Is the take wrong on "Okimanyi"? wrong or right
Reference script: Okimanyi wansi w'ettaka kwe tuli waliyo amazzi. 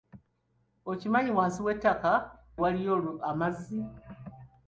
right